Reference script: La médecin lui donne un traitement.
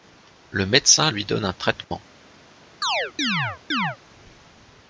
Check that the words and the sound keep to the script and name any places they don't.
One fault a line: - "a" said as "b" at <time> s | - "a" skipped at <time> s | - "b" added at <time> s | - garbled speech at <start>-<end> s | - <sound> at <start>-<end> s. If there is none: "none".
- "La" said as "Le" at 0.5 s
- dropout at 1.8-1.9 s
- chirp at 2.8-4.0 s